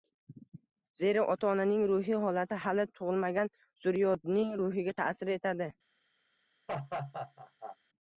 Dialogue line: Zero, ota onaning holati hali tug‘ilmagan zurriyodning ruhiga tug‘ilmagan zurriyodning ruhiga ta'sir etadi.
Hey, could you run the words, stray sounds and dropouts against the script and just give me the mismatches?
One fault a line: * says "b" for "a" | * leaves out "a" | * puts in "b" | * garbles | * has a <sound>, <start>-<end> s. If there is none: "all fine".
* puts in "ruhiy"
* leaves out "tug‘ilmagan zurriyodning ruhiga"
* has a laugh, 6.7-7.8 s